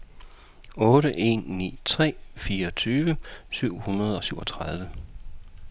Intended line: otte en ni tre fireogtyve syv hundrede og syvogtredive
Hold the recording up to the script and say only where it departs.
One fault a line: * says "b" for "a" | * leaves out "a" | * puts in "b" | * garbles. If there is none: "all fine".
all fine